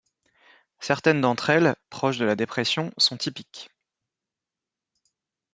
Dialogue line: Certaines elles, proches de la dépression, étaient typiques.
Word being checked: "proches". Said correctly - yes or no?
yes